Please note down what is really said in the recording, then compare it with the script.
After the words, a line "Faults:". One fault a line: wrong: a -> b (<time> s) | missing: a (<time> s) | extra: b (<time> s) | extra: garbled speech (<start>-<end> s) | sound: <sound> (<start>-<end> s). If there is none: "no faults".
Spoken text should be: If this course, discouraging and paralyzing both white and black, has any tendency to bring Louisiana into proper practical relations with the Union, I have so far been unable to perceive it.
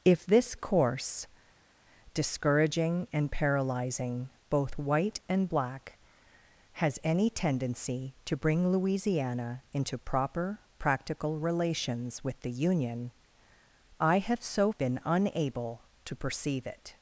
If this course, discouraging and paralyzing both white and black, has any tendency to bring Louisiana into proper practical relations with the Union, I have so been unable to perceive it.
Faults:
missing: far (14.7 s)